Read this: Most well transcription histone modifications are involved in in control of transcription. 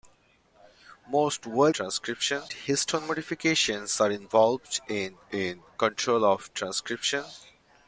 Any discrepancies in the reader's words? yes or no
no